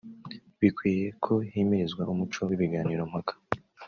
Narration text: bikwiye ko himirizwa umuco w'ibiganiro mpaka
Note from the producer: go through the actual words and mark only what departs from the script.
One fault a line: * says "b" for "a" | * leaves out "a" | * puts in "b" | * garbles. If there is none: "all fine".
all fine